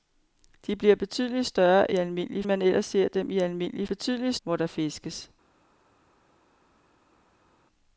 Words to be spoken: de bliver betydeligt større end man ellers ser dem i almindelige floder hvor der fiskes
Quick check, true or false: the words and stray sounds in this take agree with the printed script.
false